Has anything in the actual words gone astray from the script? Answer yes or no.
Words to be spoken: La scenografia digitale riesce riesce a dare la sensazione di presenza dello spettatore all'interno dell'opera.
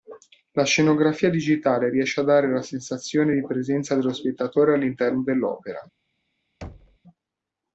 yes